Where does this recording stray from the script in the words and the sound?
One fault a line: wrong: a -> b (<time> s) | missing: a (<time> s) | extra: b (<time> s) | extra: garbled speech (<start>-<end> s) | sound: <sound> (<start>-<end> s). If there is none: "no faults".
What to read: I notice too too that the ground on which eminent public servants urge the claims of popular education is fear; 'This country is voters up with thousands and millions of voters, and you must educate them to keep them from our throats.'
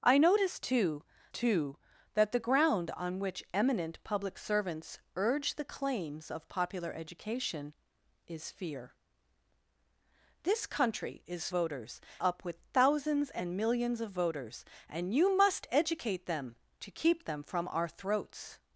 no faults